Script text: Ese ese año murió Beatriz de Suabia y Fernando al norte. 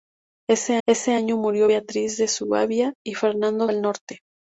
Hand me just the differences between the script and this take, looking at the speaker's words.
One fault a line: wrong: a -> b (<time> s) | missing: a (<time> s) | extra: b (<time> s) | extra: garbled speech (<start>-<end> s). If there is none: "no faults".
no faults